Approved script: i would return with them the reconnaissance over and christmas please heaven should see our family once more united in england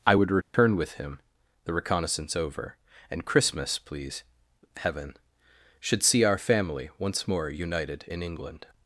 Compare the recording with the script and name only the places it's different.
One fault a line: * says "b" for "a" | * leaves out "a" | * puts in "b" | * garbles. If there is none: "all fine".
* says "him" for "them"